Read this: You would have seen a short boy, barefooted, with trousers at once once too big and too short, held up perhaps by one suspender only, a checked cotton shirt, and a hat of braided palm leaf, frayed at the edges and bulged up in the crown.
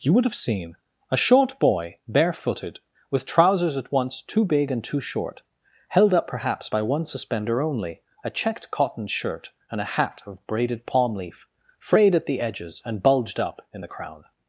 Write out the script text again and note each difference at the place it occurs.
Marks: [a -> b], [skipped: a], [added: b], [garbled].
You would have seen a short boy, barefooted, with trousers at once [skipped: once] too big and too short, held up perhaps by one suspender only, a checked cotton shirt, and a hat of braided palm leaf, frayed at the edges and bulged up in the crown.